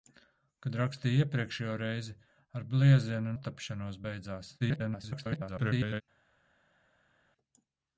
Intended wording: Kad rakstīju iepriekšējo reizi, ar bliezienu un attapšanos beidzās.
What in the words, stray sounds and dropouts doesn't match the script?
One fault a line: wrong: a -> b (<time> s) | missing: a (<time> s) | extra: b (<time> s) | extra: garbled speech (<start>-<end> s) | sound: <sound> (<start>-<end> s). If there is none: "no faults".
missing: un (3.4 s)
extra: garbled speech (4.6-6.0 s)